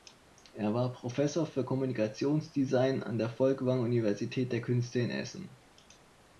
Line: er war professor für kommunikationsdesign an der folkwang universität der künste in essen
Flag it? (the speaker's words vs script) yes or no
no